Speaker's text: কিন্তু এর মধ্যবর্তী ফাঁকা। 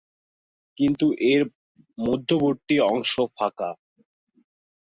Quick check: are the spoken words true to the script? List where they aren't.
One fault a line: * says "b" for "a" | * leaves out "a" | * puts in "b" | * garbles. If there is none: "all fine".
* puts in "অংশ"